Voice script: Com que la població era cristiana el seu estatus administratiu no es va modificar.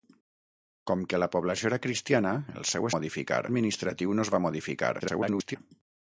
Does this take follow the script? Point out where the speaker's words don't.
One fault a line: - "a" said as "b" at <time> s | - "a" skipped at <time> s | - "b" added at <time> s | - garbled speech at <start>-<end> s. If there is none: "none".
- "estatus" said as "modificar" at 3.0 s
- garbled speech at 5.0-5.6 s